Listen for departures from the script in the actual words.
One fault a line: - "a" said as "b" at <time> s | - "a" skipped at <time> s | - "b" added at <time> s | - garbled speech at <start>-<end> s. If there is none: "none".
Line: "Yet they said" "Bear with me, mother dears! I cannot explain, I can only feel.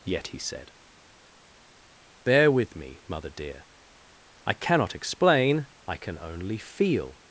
- "they" said as "he" at 0.3 s
- "dears" said as "dear" at 3.3 s